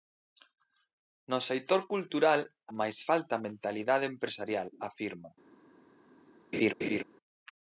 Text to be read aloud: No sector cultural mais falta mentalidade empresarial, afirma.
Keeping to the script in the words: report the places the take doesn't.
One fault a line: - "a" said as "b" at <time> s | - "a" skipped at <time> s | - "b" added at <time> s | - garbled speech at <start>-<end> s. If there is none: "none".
none